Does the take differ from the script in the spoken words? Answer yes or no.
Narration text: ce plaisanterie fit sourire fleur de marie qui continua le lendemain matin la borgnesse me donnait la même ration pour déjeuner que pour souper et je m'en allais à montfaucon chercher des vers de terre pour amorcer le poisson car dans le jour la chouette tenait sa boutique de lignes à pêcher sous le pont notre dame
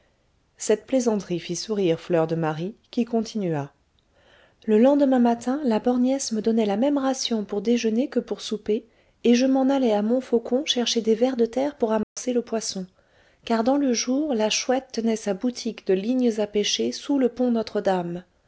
yes